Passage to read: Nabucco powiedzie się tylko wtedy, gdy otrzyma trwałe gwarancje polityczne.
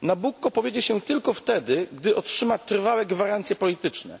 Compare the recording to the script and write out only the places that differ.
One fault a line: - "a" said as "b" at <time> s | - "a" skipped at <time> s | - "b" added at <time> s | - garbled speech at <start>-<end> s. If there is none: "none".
none